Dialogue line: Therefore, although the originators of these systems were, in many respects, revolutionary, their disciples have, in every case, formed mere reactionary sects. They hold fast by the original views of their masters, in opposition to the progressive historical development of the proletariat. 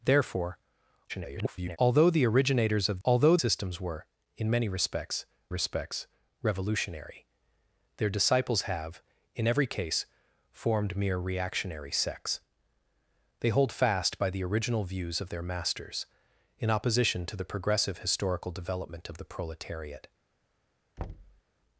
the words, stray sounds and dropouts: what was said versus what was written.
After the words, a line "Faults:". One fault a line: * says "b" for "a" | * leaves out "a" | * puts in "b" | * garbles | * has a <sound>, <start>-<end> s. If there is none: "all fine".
Therefore, [garbled] although the originators of although systems were, in many respects respects, revolutionary, their disciples have, in every case, formed mere reactionary sects. They hold fast by the original views of their masters, in opposition to the progressive historical development of the proletariat.
Faults:
* garbles
* says "although" for "these"
* puts in "respects"
* has a thud, 21.0-21.4 s